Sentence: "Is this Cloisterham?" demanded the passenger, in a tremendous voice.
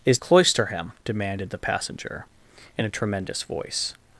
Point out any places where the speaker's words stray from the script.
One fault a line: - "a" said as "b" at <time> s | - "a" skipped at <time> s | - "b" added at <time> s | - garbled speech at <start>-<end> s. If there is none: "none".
- "this" skipped at 0.2 s